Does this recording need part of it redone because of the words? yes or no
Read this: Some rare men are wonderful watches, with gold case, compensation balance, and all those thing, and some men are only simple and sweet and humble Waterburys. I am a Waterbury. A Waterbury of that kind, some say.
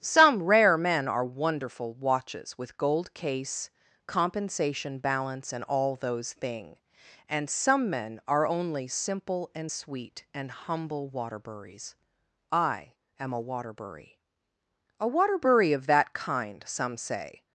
no